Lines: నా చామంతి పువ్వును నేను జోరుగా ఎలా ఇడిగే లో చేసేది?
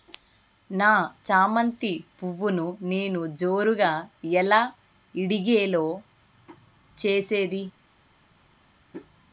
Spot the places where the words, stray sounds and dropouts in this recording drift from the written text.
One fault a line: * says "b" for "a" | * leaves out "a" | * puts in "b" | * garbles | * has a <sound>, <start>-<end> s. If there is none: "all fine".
all fine